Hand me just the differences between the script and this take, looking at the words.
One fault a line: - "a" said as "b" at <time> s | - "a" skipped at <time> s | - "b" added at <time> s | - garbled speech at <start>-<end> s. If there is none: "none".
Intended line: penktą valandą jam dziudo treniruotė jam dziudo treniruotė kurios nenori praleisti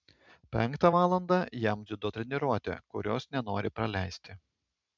- "jam dziudo treniruotė" skipped at 2.8 s